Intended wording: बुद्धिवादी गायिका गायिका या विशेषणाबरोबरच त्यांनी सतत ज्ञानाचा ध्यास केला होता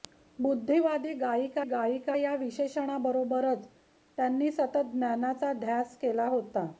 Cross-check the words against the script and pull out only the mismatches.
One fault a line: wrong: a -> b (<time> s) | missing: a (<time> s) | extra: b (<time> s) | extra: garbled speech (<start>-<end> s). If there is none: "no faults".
no faults